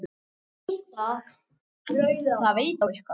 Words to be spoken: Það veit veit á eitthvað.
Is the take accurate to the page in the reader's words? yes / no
no